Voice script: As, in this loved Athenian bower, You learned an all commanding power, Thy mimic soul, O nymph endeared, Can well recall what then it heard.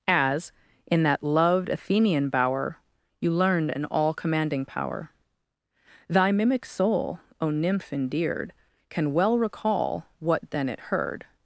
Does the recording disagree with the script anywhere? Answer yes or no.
yes